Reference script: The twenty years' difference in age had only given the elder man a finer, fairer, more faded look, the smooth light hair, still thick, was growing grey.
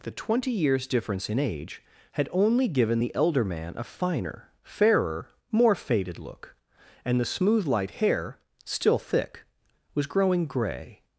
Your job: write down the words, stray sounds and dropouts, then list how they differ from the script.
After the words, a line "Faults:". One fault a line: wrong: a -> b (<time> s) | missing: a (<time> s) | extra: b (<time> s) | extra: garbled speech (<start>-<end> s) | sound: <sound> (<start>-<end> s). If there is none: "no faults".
The twenty years' difference in age had only given the elder man a finer, fairer, more faded look, and the smooth light hair, still thick, was growing grey.
Faults:
extra: and (7.0 s)